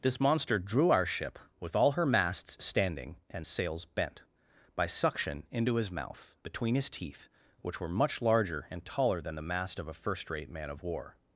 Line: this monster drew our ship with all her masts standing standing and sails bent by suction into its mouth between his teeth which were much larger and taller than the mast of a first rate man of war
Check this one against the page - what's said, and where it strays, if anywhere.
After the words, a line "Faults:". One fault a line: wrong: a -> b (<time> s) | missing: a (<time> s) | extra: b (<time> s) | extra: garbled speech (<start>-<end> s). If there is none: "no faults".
this monster drew our ship with all her masts standing and sails bent by suction into his mouth between his teeth which were much larger and taller than the mast of a first rate man of war
Faults:
missing: standing (3.2 s)
wrong: its -> his (5.8 s)